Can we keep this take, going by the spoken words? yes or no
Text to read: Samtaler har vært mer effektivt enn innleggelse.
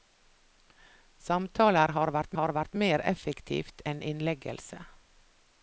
no